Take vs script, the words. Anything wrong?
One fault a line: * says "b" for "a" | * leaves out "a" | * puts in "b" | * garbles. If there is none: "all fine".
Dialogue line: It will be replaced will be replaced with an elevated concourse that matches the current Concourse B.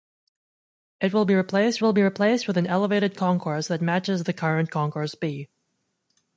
all fine